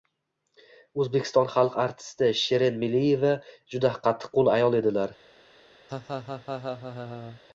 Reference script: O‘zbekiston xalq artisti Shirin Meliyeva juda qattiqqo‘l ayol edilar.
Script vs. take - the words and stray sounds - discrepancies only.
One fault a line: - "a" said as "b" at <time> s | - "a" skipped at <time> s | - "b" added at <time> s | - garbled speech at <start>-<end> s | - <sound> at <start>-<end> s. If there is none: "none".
- laugh at 5.9-7.4 s